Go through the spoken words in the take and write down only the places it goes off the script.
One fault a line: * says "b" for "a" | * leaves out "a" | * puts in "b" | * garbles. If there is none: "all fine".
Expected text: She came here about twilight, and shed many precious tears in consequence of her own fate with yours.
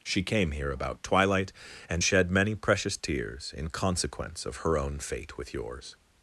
all fine